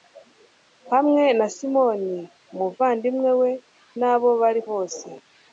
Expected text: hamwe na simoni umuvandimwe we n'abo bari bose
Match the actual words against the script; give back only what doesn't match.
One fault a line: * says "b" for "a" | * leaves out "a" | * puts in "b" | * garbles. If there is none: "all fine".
all fine